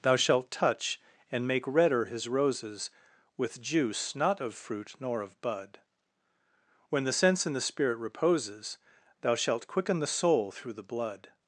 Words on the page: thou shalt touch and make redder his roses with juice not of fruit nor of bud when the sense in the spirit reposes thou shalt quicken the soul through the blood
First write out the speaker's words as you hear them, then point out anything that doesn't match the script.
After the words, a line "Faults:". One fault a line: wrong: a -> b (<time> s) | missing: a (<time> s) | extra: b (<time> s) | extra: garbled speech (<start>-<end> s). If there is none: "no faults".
thou shalt touch and make redder his roses with juice not of fruit nor of bud when the sense in the spirit reposes thou shalt quicken the soul through the blood
Faults:
no faults